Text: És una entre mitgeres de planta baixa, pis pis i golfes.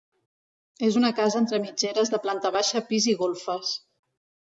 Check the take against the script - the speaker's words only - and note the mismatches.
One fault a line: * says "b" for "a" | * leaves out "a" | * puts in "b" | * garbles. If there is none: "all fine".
* puts in "casa"
* leaves out "pis"